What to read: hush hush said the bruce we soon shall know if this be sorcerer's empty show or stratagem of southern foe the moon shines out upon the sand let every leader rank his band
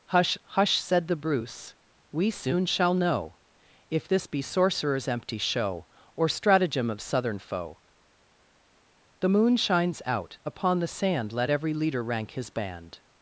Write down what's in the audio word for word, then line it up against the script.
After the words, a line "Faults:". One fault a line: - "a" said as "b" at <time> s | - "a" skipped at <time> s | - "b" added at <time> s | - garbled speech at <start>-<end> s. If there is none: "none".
hush hush said the bruce we soon shall know if this be sorcerer's empty show or stratagem of southern foe the moon shines out upon the sand let every leader rank his band
Faults:
none